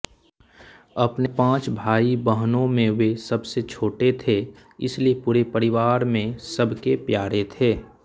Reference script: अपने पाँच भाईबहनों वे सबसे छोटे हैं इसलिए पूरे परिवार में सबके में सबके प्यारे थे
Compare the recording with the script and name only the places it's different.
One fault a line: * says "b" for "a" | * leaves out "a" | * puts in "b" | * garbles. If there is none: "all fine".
* puts in "में"
* says "थे" for "हैं"
* leaves out "में सबके"